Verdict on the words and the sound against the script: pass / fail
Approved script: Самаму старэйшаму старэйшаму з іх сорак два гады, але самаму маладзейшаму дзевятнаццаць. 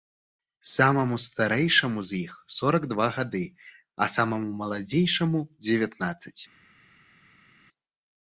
fail